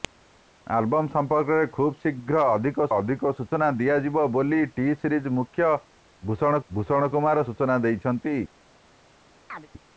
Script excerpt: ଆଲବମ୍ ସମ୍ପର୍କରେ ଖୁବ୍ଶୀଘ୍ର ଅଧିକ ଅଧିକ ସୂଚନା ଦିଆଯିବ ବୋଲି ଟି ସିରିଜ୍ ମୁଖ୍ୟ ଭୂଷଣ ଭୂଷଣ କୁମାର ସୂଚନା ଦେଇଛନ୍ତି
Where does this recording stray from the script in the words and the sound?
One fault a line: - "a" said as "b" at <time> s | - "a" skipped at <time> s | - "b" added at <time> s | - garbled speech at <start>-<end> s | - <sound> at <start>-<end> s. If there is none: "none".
- chirp at 9.5-9.7 s